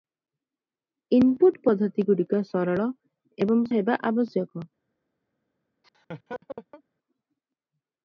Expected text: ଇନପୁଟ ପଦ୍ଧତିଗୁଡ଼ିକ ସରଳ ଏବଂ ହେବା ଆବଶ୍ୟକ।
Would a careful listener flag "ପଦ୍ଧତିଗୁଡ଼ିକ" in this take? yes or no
no